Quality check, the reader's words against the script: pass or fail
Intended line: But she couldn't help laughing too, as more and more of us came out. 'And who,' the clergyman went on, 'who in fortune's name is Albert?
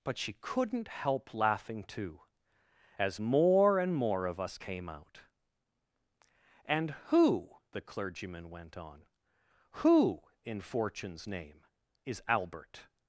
pass